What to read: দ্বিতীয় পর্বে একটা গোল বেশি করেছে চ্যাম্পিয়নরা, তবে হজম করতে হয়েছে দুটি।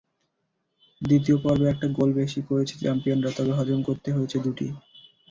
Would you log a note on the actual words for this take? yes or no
no